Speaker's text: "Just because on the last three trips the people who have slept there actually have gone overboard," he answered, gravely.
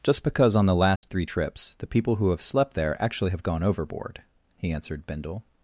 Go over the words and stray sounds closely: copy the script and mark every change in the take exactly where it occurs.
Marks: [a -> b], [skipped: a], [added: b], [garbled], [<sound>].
"Just because on the last [dropout] three trips the people who have slept there actually have gone overboard," he answered, [gravely. -> bindle]